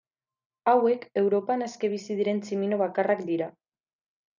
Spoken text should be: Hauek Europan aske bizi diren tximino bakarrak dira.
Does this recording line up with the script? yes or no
yes